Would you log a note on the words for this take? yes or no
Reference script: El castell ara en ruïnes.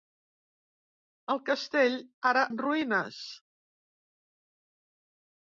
no